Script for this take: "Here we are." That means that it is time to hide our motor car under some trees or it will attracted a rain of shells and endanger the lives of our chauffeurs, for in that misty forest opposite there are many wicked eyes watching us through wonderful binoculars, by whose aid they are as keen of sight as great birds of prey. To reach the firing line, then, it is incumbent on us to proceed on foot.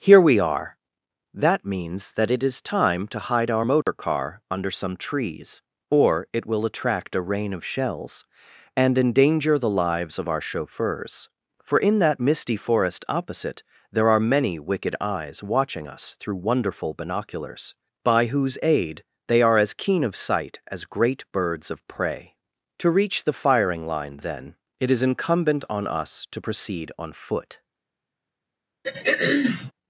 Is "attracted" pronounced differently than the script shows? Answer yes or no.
yes